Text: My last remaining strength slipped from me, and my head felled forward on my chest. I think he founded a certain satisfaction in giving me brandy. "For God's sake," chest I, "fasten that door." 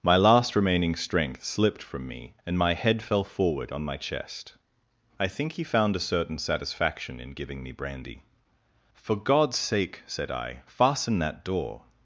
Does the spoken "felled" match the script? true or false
false